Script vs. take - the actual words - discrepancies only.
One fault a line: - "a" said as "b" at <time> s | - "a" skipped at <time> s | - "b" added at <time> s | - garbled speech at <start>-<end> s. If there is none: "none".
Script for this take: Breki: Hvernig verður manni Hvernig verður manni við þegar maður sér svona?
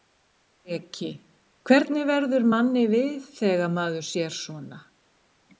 - "Hvernig verður manni" skipped at 2.9 s